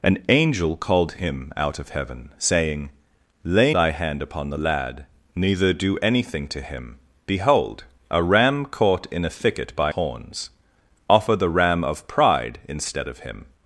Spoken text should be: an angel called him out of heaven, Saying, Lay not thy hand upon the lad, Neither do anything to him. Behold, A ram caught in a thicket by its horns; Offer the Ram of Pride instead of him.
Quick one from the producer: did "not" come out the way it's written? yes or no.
no